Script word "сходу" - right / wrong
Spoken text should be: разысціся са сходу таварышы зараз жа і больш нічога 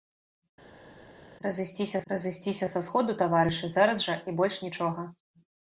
right